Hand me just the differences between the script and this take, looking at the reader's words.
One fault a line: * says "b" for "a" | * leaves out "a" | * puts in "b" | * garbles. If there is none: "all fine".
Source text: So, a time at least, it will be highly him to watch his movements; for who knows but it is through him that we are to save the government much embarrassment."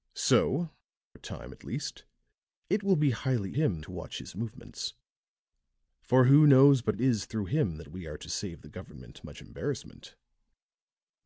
all fine